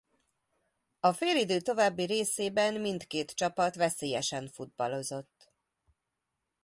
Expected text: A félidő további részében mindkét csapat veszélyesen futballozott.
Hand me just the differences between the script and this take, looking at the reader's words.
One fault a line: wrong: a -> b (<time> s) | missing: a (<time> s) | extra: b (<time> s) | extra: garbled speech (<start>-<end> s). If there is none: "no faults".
no faults